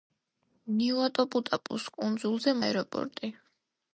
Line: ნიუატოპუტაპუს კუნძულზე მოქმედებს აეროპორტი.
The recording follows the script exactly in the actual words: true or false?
false